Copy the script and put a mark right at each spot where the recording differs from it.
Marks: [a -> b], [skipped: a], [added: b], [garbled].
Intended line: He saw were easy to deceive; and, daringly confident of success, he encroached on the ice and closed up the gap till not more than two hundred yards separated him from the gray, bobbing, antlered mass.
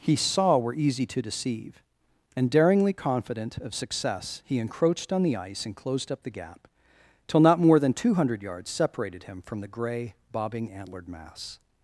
He saw were easy to deceive; and, daringly confident of success, he encroached on the ice and closed up the gap till not more than two hundred yards separated him from the gray, bobbing, antlered mass.